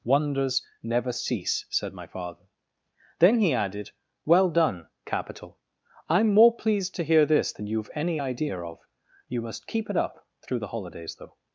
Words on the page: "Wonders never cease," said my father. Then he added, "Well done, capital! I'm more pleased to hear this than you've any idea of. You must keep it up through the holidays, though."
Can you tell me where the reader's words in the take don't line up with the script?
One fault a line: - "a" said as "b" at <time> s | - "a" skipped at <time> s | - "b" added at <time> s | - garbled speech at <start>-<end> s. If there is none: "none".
none